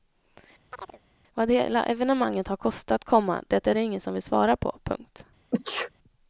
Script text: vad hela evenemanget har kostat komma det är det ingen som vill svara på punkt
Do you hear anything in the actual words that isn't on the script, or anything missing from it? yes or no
no